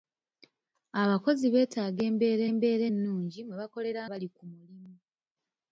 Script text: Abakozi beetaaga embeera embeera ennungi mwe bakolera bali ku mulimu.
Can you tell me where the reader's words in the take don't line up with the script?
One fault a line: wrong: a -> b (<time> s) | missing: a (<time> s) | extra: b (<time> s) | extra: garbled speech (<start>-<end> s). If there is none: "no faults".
no faults